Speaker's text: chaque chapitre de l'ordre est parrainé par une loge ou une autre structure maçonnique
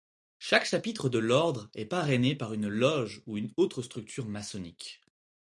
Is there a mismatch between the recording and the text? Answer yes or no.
no